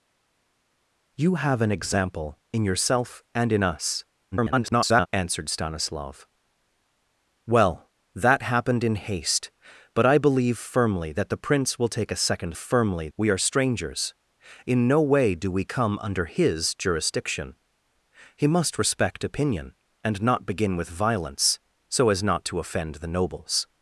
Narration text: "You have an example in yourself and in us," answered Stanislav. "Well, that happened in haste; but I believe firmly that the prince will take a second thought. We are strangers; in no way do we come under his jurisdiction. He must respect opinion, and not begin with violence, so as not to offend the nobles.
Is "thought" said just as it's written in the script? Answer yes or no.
no